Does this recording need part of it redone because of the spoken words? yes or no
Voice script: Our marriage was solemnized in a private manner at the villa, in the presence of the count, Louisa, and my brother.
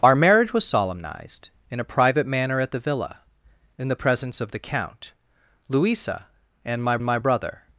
yes